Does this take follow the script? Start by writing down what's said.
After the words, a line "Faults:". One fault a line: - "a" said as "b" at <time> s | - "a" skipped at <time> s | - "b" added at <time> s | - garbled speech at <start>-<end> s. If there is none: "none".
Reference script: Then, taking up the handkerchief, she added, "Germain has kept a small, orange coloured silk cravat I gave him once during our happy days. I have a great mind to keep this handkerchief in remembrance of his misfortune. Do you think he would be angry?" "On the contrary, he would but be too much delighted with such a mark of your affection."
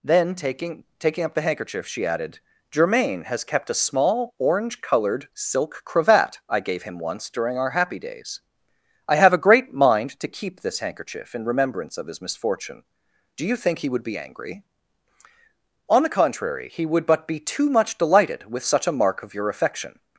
Then, taking taking up the handkerchief, she added, "Germain has kept a small, orange coloured silk cravat I gave him once during our happy days. I have a great mind to keep this handkerchief in remembrance of his misfortune. Do you think he would be angry?" "On the contrary, he would but be too much delighted with such a mark of your affection."
Faults:
- "taking" added at 1.0 s